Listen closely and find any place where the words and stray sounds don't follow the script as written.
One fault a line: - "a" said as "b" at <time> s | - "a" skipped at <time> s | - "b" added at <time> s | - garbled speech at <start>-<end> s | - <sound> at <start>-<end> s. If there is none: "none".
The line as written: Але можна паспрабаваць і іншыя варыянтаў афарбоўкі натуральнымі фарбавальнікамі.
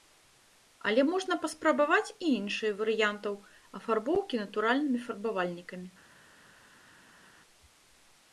none